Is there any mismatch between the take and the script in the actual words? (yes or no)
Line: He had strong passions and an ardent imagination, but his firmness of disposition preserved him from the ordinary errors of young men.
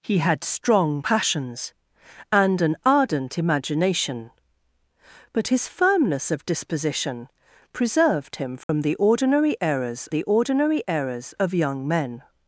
yes